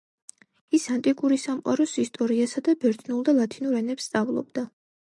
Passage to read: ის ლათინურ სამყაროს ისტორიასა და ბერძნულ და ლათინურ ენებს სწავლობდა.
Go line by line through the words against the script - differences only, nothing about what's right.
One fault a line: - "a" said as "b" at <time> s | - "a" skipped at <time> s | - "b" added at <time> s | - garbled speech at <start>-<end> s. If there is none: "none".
- "ლათინურ" said as "ანტიკური" at 0.9 s